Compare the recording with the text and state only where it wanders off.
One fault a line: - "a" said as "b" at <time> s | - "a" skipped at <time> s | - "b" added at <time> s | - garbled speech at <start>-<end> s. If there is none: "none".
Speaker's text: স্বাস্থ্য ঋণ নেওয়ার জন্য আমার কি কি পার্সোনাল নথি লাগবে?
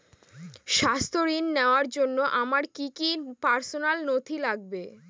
none